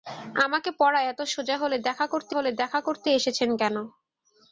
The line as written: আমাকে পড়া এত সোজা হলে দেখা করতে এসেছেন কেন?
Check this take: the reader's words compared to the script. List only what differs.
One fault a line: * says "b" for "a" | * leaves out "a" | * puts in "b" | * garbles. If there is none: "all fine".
* puts in "হলে দেখা করতে"